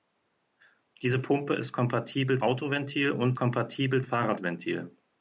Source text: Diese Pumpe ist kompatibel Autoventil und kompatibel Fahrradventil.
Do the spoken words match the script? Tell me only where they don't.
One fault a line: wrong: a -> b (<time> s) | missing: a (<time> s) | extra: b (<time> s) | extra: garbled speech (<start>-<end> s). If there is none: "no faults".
no faults